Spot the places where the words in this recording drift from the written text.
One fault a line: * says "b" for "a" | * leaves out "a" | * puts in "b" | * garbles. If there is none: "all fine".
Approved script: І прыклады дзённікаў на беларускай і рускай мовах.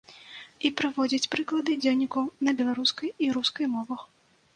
* puts in "прыводзіць"